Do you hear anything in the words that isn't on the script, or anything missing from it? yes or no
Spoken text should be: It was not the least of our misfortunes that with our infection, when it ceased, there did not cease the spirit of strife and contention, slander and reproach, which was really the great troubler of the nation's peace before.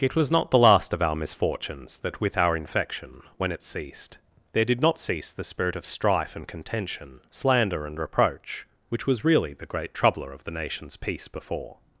yes